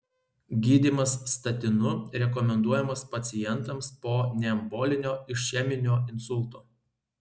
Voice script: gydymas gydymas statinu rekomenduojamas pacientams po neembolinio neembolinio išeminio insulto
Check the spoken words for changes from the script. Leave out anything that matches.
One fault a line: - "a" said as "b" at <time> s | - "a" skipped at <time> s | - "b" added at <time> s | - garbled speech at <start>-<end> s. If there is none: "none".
- "gydymas" skipped at 1.1 s
- "neembolinio" skipped at 5.2 s